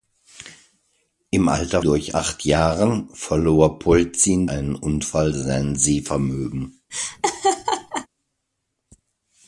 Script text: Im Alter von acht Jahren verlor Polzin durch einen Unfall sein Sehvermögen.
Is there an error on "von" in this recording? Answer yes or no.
yes